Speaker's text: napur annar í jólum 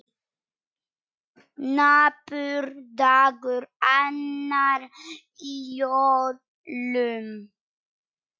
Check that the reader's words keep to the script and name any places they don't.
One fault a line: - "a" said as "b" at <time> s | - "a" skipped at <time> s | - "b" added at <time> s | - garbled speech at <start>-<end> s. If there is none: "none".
- "dagur" added at 3.0 s